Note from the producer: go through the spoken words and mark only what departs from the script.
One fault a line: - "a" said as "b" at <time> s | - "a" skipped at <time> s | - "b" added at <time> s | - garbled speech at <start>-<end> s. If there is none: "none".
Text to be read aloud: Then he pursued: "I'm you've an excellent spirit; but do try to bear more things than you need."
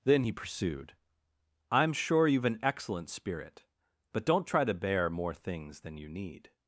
- "sure" added at 1.9 s
- "do" said as "don't" at 4.2 s